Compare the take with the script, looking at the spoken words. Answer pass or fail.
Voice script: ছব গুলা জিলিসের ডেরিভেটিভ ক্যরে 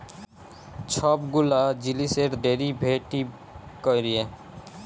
pass